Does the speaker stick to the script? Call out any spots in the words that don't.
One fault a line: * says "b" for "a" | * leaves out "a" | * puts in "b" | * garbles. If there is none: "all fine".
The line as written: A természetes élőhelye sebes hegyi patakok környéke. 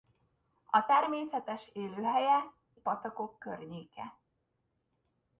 * leaves out "sebes hegyi"